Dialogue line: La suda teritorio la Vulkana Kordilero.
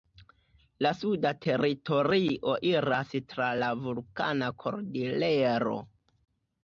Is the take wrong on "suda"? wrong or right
right